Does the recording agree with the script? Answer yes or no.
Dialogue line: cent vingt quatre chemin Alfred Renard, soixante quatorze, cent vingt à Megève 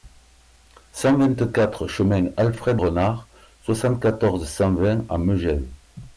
yes